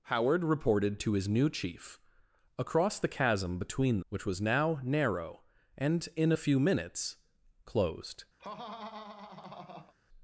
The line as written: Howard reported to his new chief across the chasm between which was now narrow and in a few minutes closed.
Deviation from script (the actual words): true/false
false